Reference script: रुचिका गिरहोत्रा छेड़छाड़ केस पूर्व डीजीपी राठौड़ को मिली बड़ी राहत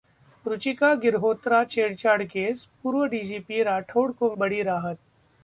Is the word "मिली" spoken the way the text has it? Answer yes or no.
no